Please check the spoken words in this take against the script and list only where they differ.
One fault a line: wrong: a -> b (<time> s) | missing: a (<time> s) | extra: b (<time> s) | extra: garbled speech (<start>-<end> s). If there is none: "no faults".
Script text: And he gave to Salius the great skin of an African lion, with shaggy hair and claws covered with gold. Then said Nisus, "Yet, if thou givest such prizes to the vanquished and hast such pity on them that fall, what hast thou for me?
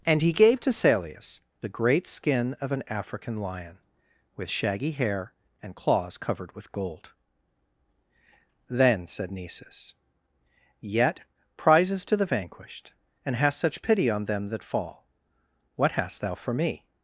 missing: if thou givest such (11.2 s)